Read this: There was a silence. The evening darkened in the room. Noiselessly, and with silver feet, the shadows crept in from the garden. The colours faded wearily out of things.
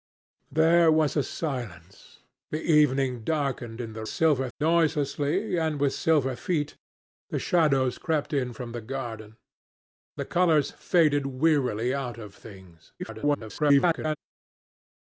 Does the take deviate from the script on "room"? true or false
true